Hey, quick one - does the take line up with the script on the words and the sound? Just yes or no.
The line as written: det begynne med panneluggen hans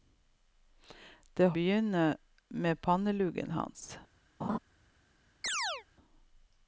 no